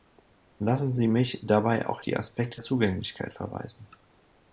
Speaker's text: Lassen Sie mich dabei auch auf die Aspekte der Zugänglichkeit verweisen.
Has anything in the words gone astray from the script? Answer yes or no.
yes